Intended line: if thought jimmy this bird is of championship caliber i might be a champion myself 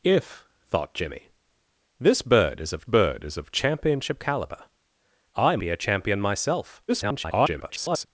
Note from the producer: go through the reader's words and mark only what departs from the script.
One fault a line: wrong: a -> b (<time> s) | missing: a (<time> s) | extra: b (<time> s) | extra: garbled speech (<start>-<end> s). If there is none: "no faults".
extra: bird is of (2.8 s)
missing: might (5.6 s)
extra: garbled speech (6.9-8.1 s)